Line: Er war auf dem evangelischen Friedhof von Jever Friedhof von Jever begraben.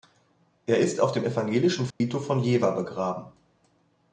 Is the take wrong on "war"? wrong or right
wrong